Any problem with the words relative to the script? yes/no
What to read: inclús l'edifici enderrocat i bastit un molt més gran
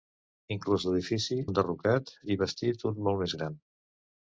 no